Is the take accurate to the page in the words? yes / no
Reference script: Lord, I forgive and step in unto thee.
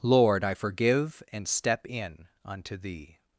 yes